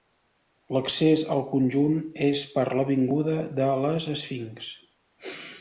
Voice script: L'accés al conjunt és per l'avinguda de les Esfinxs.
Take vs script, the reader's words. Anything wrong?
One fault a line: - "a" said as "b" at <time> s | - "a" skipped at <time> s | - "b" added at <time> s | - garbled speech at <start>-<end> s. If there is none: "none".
none